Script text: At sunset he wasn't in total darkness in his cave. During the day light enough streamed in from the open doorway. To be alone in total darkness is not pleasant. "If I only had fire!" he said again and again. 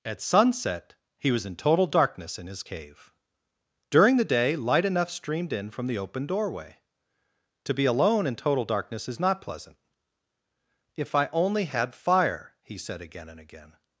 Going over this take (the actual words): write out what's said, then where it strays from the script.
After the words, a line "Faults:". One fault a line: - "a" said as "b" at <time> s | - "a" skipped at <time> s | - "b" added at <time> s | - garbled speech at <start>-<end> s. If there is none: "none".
At sunset he was in total darkness in his cave. During the day light enough streamed in from the open doorway. To be alone in total darkness is not pleasant. "If I only had fire!" he said again and again.
Faults:
- "wasn't" said as "was" at 1.3 s